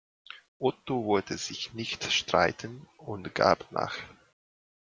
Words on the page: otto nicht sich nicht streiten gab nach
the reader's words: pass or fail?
fail